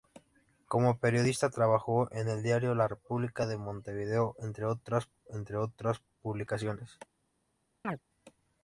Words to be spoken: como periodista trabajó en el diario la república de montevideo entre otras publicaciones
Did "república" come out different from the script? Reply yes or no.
no